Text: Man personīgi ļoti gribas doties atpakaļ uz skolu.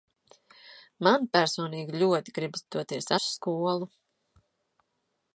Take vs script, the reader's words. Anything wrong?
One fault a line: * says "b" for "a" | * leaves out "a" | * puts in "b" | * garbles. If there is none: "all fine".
* leaves out "atpakaļ"